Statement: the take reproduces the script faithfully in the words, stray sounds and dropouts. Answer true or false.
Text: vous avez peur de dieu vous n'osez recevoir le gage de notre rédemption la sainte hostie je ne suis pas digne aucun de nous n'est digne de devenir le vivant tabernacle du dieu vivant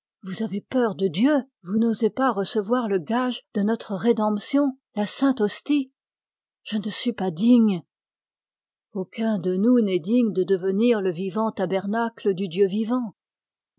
false